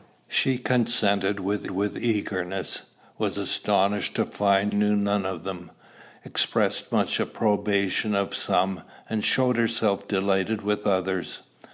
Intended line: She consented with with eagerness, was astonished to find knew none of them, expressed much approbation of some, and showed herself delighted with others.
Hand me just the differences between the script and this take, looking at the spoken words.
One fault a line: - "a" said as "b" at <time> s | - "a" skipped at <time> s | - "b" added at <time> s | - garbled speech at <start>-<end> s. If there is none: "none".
none